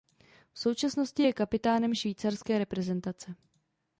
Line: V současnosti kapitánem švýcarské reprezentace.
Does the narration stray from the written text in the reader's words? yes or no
yes